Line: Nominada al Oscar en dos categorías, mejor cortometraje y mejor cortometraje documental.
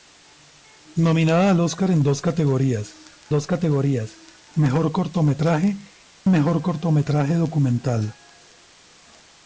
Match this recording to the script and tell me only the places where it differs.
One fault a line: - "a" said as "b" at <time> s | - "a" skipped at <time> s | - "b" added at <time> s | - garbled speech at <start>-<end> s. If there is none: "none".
- "dos categorías" added at 3.3 s
- "y" skipped at 5.8 s